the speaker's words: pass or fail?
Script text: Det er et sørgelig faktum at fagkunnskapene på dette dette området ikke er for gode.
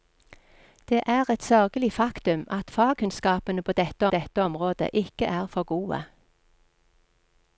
pass